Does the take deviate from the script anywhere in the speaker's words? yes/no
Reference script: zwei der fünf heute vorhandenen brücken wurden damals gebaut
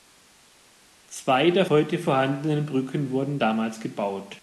yes